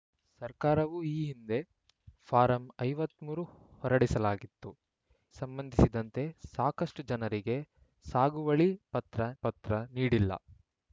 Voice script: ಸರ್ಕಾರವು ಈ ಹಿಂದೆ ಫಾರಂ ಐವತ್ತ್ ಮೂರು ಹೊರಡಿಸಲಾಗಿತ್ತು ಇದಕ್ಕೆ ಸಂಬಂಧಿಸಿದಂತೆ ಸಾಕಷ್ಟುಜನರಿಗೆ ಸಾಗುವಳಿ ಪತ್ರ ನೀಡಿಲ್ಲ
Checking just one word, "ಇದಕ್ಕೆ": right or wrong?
wrong